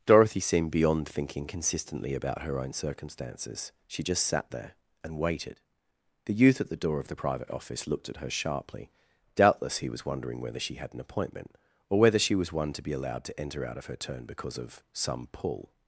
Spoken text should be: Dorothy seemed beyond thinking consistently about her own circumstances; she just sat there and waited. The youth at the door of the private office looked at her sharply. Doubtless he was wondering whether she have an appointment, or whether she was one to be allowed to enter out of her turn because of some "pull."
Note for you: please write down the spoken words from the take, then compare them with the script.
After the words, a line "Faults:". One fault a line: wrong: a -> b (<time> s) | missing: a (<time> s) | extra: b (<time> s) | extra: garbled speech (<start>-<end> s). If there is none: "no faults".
Dorothy seemed beyond thinking consistently about her own circumstances; she just sat there and waited. The youth at the door of the private office looked at her sharply. Doubtless he was wondering whether she had an appointment, or whether she was one to be allowed to enter out of her turn because of some "pull."
Faults:
wrong: have -> had (10.7 s)